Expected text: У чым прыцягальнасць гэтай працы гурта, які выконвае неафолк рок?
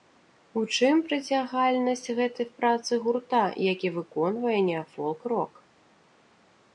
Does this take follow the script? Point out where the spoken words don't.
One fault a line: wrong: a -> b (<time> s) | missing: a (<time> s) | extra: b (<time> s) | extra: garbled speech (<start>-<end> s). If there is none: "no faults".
no faults